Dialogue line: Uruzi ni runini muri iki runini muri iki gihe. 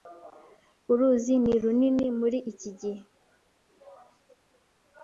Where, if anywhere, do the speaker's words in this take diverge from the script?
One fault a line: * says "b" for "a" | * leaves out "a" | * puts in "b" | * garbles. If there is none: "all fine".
* leaves out "runini muri iki"